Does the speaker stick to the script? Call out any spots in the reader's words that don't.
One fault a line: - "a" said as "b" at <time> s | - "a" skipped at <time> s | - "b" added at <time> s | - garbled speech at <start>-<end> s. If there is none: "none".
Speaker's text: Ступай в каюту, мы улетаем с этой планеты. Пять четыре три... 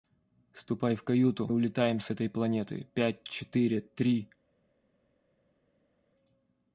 - "мы" skipped at 1.5 s